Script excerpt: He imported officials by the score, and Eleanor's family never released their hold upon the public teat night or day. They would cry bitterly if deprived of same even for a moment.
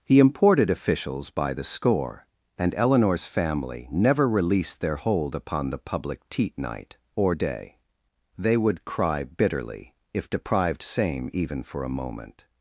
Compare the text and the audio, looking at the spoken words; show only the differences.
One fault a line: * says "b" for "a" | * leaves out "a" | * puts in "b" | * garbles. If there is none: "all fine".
* leaves out "of"